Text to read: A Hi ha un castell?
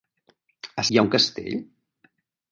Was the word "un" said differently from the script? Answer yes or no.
no